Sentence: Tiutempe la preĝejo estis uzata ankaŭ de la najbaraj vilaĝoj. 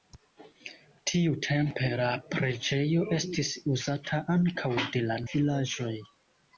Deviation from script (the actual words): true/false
true